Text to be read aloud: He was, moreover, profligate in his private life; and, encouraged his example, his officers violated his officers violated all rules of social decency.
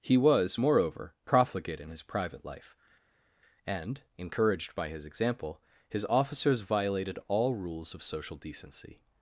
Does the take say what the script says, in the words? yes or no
no